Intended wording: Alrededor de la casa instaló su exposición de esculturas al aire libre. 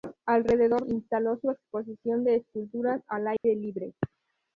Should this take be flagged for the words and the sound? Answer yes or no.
yes